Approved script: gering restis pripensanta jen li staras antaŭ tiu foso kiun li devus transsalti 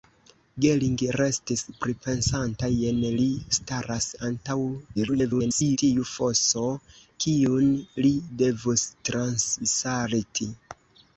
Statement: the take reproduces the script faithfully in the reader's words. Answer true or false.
false